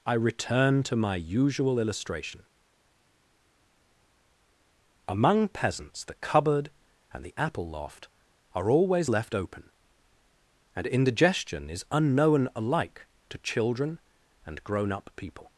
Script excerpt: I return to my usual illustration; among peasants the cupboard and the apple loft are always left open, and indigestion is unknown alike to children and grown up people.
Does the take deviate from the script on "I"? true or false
false